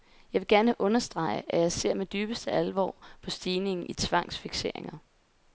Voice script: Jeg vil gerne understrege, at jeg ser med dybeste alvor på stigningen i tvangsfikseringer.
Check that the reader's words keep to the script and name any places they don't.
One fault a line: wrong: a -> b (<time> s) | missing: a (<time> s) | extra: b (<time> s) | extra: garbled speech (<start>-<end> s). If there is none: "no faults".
no faults